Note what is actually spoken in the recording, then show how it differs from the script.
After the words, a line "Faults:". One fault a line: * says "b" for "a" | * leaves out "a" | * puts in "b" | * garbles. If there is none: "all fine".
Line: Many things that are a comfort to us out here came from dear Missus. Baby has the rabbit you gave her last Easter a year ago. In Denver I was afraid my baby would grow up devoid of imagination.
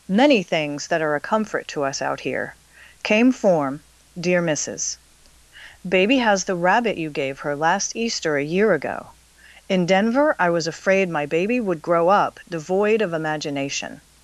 Many things that are a comfort to us out here came form dear Missus. Baby has the rabbit you gave her last Easter a year ago. In Denver I was afraid my baby would grow up devoid of imagination.
Faults:
* says "form" for "from"